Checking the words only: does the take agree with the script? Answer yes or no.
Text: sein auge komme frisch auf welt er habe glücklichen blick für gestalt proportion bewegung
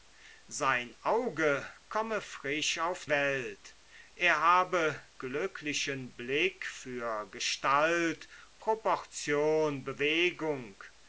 yes